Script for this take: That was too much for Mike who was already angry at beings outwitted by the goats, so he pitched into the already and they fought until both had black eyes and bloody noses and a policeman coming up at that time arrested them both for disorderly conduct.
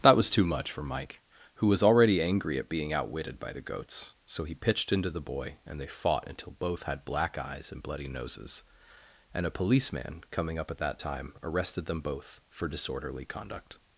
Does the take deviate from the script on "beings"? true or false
true